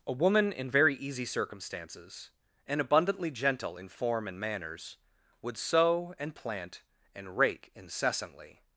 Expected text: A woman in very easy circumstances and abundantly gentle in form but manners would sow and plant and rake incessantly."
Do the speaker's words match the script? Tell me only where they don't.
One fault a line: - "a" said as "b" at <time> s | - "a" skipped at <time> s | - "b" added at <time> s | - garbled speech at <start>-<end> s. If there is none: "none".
- "but" said as "and" at 4.3 s